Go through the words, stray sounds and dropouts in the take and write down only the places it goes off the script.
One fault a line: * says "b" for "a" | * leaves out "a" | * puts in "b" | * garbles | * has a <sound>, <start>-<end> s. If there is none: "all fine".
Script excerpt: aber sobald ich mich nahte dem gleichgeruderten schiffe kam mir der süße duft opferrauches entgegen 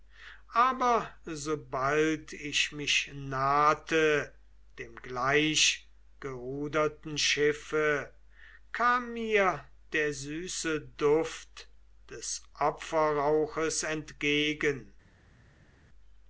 * puts in "des"